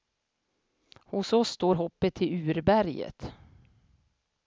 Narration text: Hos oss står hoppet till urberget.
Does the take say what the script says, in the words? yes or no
yes